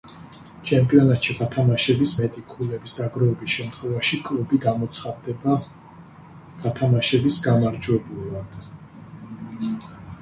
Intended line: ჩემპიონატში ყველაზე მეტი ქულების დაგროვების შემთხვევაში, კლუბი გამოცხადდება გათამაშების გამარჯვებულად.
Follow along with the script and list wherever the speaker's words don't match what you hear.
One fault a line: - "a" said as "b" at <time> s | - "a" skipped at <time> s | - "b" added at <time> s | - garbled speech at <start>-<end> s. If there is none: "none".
- "ყველაზე" said as "გათამაშების" at 1.4 s